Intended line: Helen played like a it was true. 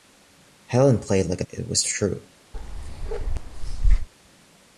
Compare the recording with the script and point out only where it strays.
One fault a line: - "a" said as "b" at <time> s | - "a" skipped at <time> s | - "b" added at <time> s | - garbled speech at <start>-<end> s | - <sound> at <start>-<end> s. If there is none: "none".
- bark at 2.5-4.1 s